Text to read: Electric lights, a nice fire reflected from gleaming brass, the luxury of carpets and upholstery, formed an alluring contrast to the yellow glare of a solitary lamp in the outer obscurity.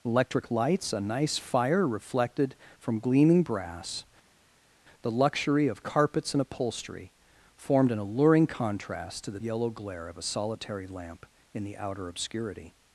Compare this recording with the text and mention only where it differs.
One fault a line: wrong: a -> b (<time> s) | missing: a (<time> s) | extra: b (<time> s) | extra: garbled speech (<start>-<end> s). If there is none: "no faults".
no faults